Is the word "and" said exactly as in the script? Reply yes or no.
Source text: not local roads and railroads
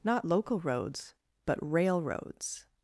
no